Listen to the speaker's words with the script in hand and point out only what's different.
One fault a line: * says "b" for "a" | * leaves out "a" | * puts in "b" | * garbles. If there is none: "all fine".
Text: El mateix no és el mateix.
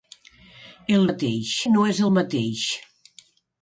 all fine